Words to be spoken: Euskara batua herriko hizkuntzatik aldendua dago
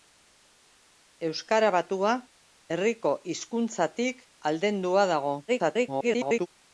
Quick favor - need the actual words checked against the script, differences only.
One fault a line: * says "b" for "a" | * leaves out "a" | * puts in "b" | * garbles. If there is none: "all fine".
* garbles